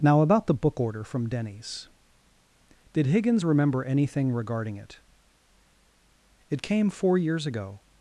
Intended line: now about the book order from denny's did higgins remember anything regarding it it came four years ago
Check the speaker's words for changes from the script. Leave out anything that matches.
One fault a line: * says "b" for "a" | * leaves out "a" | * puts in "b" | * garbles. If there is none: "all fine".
all fine